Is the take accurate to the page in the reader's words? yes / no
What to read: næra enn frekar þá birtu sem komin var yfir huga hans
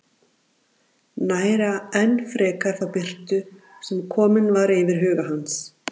yes